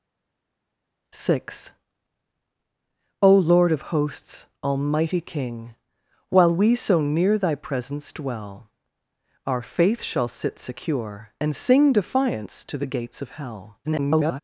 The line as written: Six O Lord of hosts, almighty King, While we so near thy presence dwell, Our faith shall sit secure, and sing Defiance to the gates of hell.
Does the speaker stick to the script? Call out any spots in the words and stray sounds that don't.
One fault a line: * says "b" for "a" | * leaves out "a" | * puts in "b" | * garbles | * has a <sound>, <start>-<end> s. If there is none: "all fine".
* garbles